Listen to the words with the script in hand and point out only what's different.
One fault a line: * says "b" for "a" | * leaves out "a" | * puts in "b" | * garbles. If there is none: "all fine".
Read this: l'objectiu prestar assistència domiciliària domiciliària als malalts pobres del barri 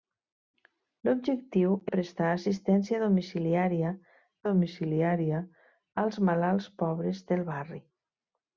all fine